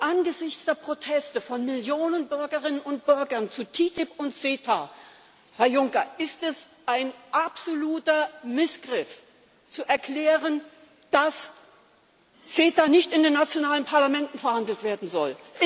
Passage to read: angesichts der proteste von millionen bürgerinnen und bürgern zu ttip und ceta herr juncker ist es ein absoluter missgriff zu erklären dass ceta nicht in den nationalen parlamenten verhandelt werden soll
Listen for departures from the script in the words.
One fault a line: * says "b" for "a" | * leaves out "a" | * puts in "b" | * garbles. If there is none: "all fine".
all fine